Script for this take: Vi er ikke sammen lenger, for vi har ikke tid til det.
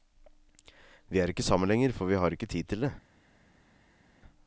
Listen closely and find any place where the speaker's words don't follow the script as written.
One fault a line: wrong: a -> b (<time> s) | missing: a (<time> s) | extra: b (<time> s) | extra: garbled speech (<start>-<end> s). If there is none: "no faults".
no faults